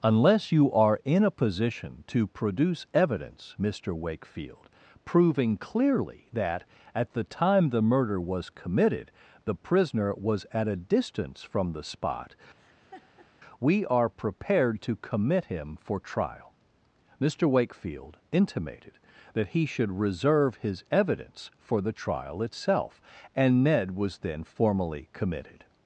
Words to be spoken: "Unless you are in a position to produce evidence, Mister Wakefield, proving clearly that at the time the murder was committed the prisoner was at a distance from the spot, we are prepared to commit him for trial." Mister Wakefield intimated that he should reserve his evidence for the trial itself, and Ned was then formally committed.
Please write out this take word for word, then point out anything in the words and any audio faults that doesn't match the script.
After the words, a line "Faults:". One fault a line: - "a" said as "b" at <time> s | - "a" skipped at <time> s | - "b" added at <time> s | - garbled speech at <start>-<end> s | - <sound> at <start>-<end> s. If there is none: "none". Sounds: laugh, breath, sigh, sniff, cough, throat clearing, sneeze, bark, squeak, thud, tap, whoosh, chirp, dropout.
"Unless you are in a position to produce evidence, Mister Wakefield, proving clearly that at the time the murder was committed the prisoner was at a distance from the spot, we are prepared to commit him for trial." Mister Wakefield intimated that he should reserve his evidence for the trial itself, and Ned was then formally committed.
Faults:
- laugh at 12.6-13.3 s